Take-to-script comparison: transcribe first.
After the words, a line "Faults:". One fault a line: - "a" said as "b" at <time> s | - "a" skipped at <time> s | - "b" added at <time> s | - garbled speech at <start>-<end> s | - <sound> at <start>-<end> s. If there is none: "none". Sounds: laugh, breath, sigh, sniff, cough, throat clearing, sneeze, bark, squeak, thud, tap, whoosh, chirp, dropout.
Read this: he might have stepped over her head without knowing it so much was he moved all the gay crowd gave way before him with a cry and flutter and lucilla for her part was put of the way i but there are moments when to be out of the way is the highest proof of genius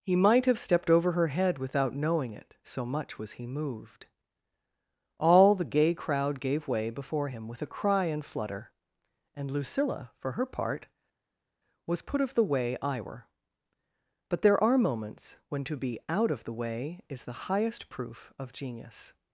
he might have stepped over her head without knowing it so much was he moved all the gay crowd gave way before him with a cry and flutter and lucilla for her part was put of the way i were but there are moments when to be out of the way is the highest proof of genius
Faults:
- "were" added at 13.0 s